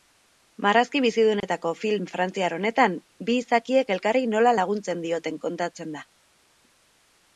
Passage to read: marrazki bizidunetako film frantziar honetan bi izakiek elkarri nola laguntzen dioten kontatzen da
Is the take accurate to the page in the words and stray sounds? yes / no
no